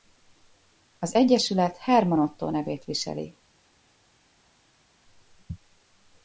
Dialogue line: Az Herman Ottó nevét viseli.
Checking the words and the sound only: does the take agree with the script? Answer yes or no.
no